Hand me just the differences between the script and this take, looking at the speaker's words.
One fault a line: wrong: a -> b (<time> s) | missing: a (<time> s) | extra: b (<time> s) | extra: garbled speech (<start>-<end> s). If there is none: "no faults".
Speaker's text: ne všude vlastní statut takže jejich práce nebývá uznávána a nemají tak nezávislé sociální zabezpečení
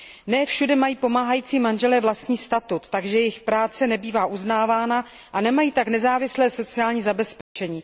extra: mají pomáhající manželé (0.8 s)